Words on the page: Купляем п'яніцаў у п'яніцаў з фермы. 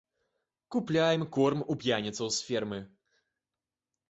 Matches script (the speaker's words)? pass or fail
fail